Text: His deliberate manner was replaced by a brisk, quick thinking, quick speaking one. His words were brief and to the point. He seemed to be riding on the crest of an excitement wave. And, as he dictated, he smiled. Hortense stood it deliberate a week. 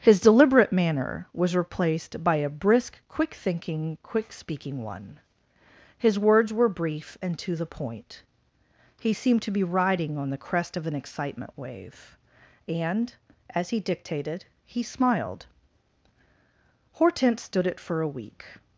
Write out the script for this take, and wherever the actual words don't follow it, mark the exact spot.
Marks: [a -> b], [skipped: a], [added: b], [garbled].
His deliberate manner was replaced by a brisk, quick thinking, quick speaking one. His words were brief and to the point. He seemed to be riding on the crest of an excitement wave. And, as he dictated, he smiled. Hortense stood it [deliberate -> for] a week.